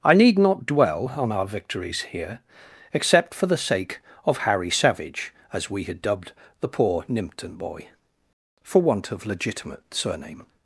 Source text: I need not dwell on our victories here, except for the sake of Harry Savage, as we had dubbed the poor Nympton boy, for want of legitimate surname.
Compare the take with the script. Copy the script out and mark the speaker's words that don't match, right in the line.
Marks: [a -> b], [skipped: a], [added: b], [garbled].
I need not dwell on our victories here, except for the sake of Harry Savage, as we had dubbed the poor Nympton boy, for want of legitimate surname.